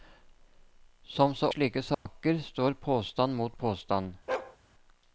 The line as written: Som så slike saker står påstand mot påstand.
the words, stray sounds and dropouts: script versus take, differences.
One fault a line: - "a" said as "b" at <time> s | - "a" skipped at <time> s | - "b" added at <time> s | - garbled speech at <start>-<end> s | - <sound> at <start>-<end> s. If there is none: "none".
- dropout at 1.9-2.1 s
- bark at 4.3-4.6 s